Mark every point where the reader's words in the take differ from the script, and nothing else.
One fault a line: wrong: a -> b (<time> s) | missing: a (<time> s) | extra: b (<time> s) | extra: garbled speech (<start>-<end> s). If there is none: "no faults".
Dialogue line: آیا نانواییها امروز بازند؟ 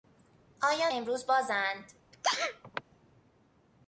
missing: نانواییها (0.9 s)